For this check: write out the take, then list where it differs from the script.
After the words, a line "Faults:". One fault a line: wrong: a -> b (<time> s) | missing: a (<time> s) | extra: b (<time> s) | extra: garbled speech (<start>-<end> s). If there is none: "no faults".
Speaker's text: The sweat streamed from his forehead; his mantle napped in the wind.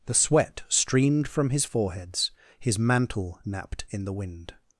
The sweat streamed from his foreheads; his mantle napped in the wind.
Faults:
wrong: forehead -> foreheads (1.6 s)